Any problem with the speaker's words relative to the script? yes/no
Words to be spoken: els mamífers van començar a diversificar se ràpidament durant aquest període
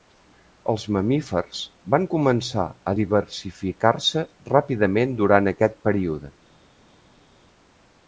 no